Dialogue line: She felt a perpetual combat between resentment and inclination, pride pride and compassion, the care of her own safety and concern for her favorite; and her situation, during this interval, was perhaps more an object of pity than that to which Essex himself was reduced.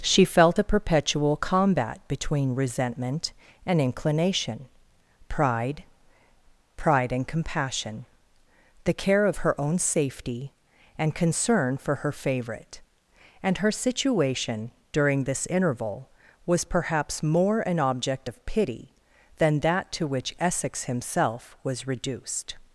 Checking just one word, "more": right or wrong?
right